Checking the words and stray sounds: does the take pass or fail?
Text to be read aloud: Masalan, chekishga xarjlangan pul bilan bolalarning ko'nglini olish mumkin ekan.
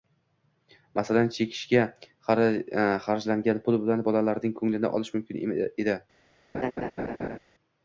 fail